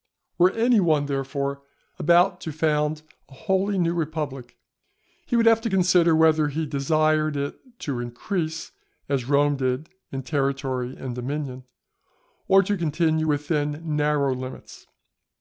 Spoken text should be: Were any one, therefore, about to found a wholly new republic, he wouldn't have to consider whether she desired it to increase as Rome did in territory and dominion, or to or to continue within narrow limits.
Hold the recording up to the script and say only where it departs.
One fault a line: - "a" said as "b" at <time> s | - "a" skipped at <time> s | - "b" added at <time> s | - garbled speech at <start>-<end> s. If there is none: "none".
- "wouldn't" said as "would" at 5.3 s
- "she" said as "he" at 6.5 s
- "or to" skipped at 12.8 s